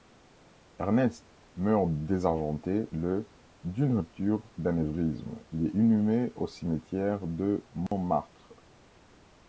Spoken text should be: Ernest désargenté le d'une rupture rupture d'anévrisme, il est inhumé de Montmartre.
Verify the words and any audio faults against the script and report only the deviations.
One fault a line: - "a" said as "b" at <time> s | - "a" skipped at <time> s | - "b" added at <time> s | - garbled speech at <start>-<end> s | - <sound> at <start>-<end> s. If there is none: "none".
- "meurt" added at 1.6 s
- "rupture" skipped at 4.5 s
- "au cimetière" added at 6.3 s
- dropout at 7.9-7.9 s